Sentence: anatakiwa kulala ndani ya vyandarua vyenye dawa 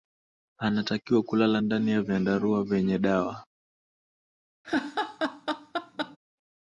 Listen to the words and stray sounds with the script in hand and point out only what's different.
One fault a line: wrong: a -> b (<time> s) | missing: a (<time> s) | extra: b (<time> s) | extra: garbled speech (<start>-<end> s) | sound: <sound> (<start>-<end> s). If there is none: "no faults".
sound: laugh (4.6-6.2 s)